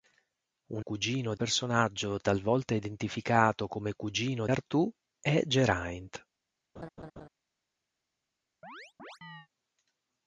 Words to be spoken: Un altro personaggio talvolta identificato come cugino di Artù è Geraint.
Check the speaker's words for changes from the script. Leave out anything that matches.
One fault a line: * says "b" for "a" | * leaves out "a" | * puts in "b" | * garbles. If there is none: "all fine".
* says "cugino" for "altro"
* leaves out "di"